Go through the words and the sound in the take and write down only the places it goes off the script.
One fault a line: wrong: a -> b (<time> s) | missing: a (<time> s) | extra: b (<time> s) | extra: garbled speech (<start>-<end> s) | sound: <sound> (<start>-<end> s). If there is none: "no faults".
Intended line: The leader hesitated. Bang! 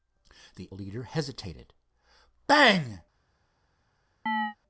sound: chirp (4.3-4.6 s)